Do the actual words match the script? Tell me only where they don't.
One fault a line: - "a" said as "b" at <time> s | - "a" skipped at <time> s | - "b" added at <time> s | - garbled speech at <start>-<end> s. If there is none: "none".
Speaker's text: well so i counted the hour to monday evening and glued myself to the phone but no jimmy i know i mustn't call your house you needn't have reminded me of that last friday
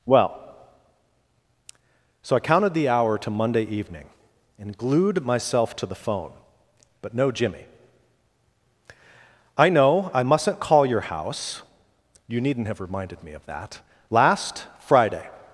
none